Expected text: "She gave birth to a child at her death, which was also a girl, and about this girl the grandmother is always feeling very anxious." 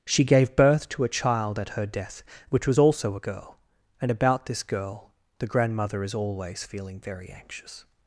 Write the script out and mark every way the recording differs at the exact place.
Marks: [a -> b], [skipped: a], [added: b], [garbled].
"She gave birth to a child at her death, which was also a girl, and about this girl the grandmother is always feeling very anxious."